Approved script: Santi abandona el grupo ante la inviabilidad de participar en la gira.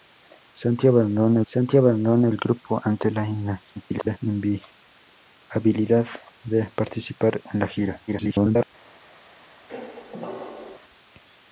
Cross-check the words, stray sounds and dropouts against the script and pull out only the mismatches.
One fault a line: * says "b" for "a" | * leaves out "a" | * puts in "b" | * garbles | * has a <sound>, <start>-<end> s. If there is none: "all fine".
* puts in "santi abandona"
* garbles
* garbles
* has a squeak, 9.7-10.8 s